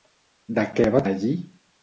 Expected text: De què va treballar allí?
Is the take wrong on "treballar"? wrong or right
wrong